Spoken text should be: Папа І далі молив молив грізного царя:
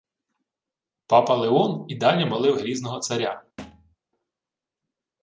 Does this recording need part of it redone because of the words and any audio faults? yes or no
yes